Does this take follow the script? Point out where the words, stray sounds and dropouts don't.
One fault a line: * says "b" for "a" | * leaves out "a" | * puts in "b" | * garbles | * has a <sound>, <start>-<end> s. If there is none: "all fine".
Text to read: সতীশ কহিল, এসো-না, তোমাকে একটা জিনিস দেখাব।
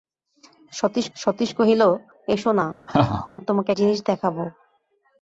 * puts in "সতীশ"
* has a laugh, 2.9-3.3 s
* leaves out "একটা"